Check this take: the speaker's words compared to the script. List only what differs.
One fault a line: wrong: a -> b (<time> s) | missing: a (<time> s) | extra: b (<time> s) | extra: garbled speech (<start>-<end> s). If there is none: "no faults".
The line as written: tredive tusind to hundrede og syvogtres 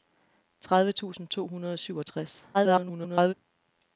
extra: garbled speech (2.5-3.3 s)